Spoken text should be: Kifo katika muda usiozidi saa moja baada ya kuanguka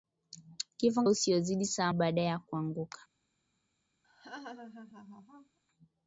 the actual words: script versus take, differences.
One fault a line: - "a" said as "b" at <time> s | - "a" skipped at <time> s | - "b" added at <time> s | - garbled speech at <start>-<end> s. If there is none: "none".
- "katika muda" skipped at 1.0 s
- "moja" skipped at 1.9 s